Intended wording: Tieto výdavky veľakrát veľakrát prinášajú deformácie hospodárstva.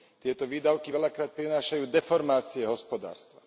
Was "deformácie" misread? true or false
false